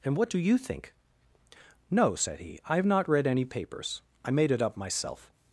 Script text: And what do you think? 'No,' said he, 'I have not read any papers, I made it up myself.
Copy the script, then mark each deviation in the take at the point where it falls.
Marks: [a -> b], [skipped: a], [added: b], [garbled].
And what do you think? 'No,' said he, 'I have not read any papers, I made it up myself.